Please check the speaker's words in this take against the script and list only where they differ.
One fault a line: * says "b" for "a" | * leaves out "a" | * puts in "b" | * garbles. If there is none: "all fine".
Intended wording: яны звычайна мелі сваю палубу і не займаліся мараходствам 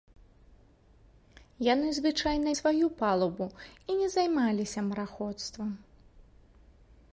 * leaves out "мелі"